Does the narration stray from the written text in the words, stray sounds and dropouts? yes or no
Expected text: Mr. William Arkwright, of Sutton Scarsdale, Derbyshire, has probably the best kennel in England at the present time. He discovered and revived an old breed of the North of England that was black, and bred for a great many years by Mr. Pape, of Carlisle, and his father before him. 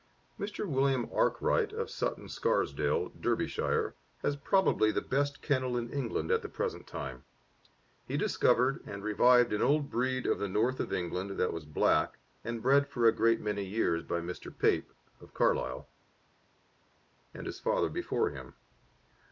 no